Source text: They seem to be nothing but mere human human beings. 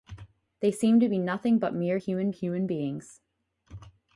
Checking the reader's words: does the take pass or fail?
pass